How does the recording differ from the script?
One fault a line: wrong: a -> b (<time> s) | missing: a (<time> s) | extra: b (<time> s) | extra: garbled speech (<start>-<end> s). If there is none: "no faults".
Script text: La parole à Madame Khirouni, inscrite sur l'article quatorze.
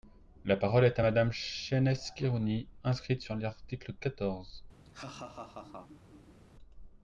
extra: est (0.8 s)
extra: Chaynesse (1.3 s)